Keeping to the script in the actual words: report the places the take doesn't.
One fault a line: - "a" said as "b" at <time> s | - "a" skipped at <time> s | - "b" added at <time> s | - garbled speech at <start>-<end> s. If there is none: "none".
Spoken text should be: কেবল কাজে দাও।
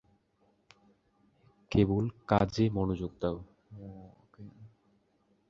- "মনোযোগ" added at 2.7 s